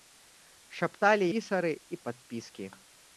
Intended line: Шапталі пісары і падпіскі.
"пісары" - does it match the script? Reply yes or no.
yes